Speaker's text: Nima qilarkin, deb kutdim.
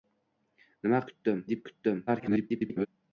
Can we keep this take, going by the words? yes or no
no